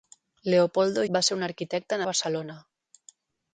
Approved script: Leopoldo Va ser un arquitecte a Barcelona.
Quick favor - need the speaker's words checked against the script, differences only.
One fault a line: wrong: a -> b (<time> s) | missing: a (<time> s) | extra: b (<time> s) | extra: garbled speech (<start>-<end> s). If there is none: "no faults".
no faults